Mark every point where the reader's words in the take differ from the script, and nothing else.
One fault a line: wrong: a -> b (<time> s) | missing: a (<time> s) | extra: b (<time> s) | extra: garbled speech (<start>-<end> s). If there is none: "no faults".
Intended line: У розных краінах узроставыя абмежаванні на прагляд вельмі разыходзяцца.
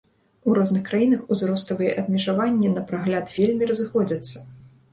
no faults